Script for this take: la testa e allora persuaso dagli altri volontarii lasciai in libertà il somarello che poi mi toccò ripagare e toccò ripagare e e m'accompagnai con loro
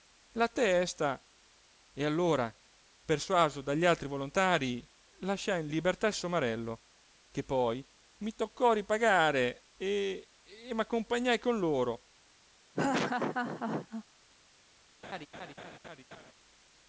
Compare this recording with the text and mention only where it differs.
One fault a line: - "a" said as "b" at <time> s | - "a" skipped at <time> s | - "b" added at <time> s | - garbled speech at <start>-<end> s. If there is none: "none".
- "toccò ripagare e" skipped at 10.3 s